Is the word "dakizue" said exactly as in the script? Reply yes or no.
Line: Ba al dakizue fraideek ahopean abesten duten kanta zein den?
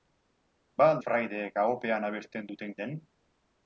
no